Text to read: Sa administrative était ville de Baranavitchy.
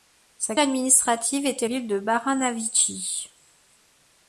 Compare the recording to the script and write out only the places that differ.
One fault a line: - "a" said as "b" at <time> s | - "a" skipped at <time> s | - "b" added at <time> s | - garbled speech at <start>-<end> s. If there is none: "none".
none